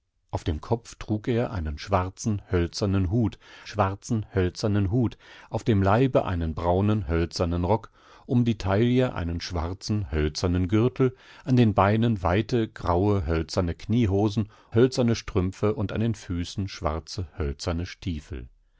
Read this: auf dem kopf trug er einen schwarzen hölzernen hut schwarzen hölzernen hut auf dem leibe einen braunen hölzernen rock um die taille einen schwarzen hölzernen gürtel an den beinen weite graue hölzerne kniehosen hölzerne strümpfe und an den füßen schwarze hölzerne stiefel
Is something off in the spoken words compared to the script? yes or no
no